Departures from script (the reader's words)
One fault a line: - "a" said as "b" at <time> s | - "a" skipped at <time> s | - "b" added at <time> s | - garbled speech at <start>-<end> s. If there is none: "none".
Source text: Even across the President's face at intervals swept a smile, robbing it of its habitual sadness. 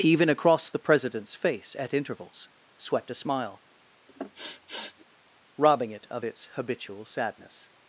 none